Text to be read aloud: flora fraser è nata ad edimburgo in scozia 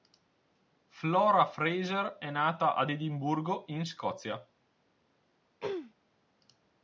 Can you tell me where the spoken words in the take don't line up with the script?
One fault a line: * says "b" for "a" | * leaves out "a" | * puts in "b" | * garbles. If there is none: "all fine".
all fine